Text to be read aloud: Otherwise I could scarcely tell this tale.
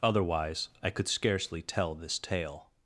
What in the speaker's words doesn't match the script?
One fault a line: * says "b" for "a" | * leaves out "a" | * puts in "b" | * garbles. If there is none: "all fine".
all fine